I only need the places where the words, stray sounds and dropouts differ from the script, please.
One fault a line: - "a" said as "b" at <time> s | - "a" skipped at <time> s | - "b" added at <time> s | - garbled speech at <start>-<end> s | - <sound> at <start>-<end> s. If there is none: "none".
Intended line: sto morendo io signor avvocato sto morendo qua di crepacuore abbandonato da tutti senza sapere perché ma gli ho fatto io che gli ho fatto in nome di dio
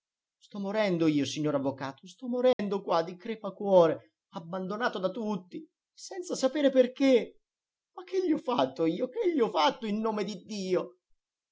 - dropout at 2.5-2.6 s
- "che" added at 8.0 s